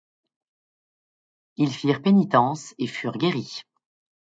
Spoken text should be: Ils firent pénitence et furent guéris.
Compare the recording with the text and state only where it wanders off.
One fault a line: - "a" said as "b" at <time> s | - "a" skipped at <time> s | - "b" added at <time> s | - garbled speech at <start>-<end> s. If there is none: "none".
none